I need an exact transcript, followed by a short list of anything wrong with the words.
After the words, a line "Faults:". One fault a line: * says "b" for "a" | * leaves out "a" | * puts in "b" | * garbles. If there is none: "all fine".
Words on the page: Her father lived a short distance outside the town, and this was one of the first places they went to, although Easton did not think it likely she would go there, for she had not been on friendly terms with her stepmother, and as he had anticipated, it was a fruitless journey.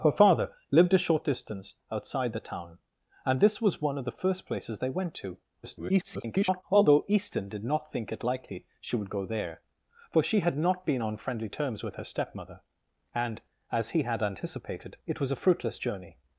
Her father lived a short distance outside the town, and this was one of the first places they went to, [garbled] although Easton did not think it likely she would go there, for she had not been on friendly terms with her stepmother, and as he had anticipated, it was a fruitless journey.
Faults:
* garbles